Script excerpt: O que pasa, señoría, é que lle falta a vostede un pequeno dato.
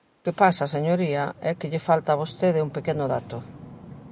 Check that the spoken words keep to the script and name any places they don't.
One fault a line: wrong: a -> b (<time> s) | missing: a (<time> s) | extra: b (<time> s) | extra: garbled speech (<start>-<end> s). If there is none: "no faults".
no faults